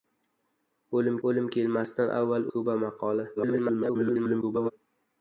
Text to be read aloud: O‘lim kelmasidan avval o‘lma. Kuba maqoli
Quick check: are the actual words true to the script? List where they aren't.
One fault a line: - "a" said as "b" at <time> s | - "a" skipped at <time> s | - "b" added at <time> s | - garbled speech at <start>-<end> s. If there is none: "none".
- "o‘lim" added at 1.3 s
- "o‘lma" skipped at 2.5 s
- garbled speech at 3.4-4.7 s